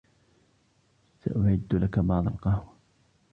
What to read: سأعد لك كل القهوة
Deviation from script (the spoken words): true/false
true